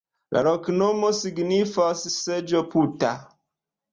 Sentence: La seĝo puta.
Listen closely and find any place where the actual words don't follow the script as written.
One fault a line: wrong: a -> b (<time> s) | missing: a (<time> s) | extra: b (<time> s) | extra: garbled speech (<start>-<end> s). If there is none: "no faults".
extra: loknomo signifas (0.5 s)